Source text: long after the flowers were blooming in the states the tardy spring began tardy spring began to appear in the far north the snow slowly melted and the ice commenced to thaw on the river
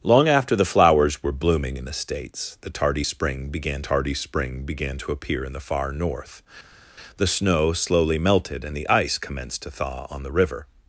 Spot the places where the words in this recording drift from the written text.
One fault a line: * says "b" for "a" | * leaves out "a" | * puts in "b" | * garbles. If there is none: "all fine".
all fine